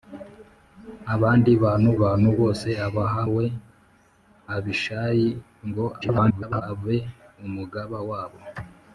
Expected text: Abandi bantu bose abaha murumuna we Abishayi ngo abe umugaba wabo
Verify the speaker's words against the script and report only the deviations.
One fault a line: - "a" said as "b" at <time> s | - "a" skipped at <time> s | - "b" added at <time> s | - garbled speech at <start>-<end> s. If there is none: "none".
- "bantu" added at 2.0 s
- "murumuna" skipped at 3.2 s
- garbled speech at 6.0-6.6 s